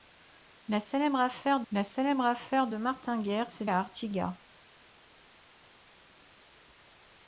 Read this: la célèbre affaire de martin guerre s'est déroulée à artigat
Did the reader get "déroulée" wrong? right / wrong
wrong